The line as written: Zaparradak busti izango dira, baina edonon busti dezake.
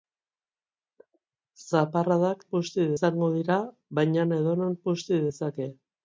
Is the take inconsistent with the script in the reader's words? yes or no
no